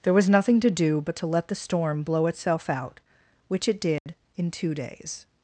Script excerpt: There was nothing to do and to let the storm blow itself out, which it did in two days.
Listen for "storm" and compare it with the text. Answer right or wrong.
right